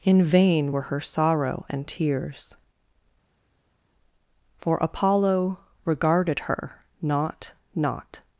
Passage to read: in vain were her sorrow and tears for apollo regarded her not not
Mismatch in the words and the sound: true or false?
false